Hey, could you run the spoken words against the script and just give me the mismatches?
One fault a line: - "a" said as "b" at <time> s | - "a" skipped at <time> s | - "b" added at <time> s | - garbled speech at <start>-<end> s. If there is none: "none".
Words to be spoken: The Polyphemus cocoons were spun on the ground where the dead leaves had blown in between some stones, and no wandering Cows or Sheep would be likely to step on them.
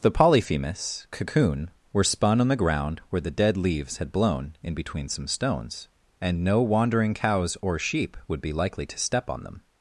- "cocoons" said as "cocoon" at 1.1 s